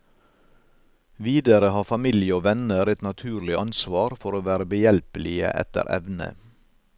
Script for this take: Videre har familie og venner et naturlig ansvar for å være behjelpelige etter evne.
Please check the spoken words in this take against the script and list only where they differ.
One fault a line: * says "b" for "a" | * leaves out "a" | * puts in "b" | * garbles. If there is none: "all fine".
all fine